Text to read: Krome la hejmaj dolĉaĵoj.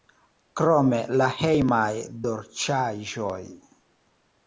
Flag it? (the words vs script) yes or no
no